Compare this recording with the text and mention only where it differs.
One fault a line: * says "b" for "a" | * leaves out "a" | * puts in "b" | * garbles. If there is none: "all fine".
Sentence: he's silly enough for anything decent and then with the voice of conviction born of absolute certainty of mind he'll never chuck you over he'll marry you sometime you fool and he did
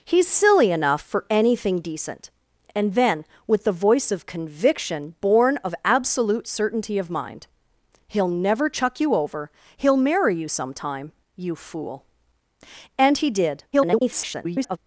* garbles